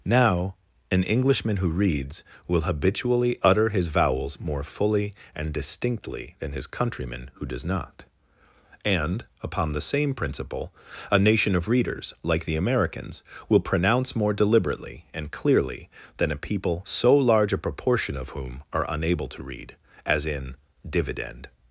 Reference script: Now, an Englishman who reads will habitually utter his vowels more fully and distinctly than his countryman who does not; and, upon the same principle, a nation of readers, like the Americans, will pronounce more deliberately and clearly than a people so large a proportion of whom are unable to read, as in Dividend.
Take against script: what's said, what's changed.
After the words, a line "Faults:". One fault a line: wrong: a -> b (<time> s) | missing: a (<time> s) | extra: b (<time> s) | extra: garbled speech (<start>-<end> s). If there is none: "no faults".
Now, an Englishman who reads will habitually utter his vowels more fully and distinctly than his countryman who does not; and, upon the same principle, a nation of readers, like the Americans, will pronounce more deliberately and clearly than a people so large a proportion of whom are unable to read, as in Dividend.
Faults:
no faults